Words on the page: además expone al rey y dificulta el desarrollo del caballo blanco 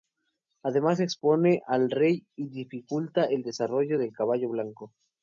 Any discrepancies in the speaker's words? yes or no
no